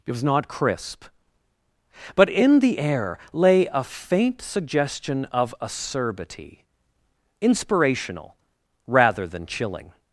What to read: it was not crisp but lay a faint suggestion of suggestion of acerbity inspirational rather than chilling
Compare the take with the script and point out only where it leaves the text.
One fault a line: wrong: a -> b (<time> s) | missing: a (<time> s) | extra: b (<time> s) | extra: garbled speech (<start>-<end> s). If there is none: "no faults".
extra: in the air (2.3 s)
missing: suggestion of (5.5 s)